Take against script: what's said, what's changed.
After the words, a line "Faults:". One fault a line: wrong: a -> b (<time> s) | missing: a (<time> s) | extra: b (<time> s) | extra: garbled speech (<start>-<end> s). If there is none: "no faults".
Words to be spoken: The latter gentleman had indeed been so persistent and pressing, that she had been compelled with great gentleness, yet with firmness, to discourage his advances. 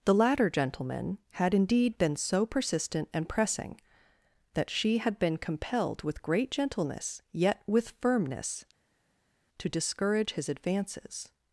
The latter gentleman had indeed been so persistent and pressing, that she had been compelled with great gentleness, yet with firmness, to discourage his advances.
Faults:
no faults